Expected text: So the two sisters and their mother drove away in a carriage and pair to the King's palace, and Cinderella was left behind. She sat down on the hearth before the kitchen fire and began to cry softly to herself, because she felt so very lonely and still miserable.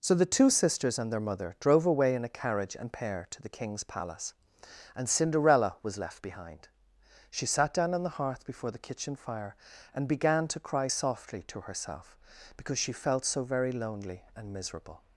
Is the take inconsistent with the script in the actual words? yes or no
yes